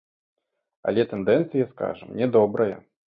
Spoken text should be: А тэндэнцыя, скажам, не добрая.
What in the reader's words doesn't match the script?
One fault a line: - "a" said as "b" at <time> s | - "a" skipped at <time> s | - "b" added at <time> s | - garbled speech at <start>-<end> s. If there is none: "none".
- "А" said as "Але" at 0.9 s